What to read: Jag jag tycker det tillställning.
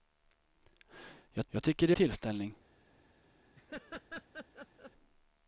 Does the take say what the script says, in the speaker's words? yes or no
yes